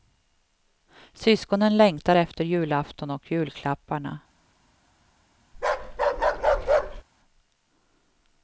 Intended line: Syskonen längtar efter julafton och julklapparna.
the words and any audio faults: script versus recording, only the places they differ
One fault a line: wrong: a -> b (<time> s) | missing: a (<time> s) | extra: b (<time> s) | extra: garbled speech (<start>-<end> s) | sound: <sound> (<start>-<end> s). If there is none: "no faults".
sound: bark (5.5-7.0 s)